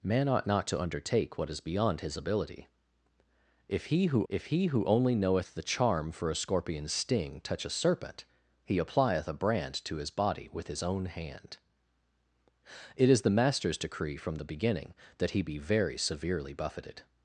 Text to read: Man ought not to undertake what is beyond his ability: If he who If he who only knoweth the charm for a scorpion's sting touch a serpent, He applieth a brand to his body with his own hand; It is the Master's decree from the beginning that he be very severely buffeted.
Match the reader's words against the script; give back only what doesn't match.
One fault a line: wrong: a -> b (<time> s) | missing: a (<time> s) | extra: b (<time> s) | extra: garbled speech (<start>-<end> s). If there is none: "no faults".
no faults